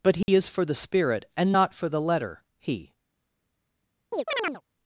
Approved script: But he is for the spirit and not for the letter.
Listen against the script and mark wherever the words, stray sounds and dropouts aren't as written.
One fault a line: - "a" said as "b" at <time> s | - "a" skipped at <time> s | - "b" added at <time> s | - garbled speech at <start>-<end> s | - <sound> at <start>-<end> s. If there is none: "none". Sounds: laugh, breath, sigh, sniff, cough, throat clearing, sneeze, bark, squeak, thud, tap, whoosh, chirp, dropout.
- dropout at 0.2-0.3 s
- "He" added at 2.6 s
- chirp at 4.1-4.6 s